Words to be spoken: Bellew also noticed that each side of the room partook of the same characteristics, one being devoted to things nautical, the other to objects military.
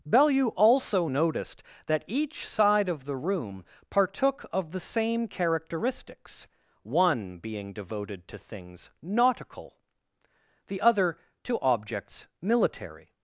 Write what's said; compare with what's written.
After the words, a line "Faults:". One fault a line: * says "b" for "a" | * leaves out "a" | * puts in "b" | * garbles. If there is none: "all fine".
Bellew also noticed that each side of the room partook of the same characteristics, one being devoted to things nautical, the other to objects military.
Faults:
all fine